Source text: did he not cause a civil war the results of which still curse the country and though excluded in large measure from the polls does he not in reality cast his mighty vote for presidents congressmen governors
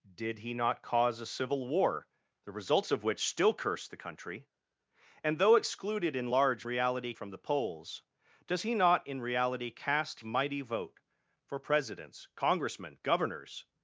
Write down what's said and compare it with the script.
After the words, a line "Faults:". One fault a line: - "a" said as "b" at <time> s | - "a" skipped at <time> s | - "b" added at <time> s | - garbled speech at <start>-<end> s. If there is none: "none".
did he not cause a civil war the results of which still curse the country and though excluded in large reality from the polls does he not in reality cast mighty vote for presidents congressmen governors
Faults:
- "measure" said as "reality" at 6.6 s
- "his" skipped at 10.2 s